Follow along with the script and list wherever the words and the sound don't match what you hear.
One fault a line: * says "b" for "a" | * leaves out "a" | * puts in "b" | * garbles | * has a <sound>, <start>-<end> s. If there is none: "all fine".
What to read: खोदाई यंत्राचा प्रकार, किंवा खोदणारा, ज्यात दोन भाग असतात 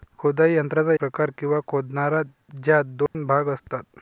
* has a dropout, 3.1-3.1 s